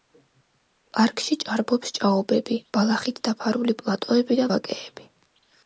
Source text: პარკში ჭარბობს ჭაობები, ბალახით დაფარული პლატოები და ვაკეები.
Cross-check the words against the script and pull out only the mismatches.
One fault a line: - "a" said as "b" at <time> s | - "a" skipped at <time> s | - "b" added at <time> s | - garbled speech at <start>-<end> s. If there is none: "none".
none